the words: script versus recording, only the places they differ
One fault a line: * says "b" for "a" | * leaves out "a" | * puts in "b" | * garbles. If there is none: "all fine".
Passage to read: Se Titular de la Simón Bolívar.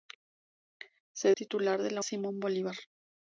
all fine